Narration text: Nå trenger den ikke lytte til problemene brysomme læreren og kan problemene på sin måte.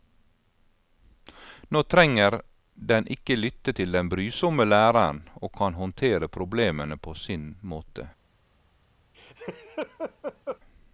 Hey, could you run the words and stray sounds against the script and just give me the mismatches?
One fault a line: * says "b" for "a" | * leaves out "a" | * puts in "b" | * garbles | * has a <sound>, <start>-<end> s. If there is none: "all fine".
* says "den" for "problemene"
* puts in "håndtere"
* has a laugh, 9.1-10.6 s